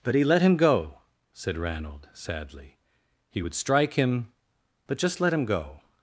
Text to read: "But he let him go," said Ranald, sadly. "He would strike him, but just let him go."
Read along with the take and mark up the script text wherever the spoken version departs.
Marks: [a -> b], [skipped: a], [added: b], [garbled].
"But he let him go," said Ranald, sadly. "He would strike him, but just let him go."